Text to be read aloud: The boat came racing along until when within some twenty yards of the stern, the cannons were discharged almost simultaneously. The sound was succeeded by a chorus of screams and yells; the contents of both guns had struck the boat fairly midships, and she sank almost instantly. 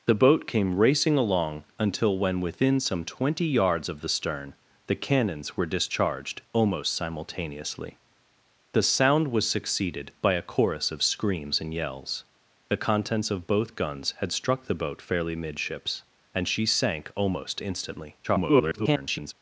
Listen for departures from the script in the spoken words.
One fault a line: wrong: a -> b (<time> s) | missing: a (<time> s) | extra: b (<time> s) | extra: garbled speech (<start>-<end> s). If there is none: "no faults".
extra: garbled speech (18.2-19.3 s)